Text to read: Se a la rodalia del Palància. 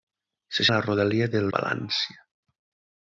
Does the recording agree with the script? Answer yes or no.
yes